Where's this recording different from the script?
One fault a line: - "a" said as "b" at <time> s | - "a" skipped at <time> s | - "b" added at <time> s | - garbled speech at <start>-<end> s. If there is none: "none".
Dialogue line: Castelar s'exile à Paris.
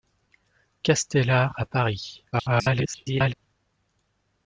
- "s'exile" skipped at 1.6 s
- garbled speech at 2.3-3.3 s